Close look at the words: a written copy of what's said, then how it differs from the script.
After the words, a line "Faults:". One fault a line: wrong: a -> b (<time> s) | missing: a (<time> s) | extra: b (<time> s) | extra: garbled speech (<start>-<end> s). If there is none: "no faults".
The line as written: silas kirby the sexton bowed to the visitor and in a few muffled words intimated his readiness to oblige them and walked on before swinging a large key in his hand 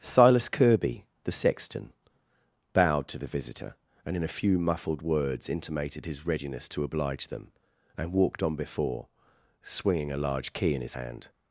silas kirby the sexton bowed to the visitor and in a few muffled words intimated his readiness to oblige them and walked on before swinging a large key in his hand
Faults:
no faults